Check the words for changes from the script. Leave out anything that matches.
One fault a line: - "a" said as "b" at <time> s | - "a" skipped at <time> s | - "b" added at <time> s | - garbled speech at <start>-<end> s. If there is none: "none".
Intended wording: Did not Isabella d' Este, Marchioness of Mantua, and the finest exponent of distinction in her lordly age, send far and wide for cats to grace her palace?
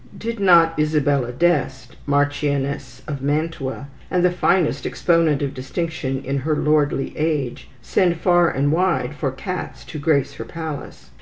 none